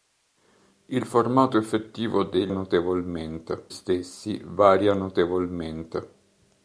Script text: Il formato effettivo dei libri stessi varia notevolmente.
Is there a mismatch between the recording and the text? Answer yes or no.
yes